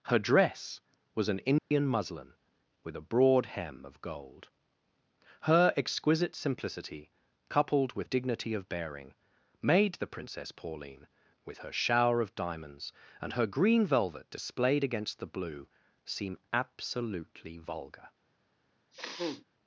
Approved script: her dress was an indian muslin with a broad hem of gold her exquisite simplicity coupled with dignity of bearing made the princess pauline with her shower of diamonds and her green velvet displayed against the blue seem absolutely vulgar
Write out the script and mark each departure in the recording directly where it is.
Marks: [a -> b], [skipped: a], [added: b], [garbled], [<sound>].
her dress was an indian [dropout] muslin with a broad hem of gold her exquisite simplicity coupled with dignity of bearing made the princess pauline with her shower of diamonds and her green velvet displayed against the blue seem absolutely vulgar [sniff]